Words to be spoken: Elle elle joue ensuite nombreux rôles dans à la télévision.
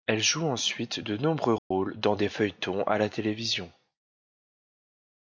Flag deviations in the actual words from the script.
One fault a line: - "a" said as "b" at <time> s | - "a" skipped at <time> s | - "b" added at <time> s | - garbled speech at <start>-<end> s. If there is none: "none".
- "elle" skipped at 0.2 s
- "de" added at 1.0 s
- "des feuilletons" added at 2.2 s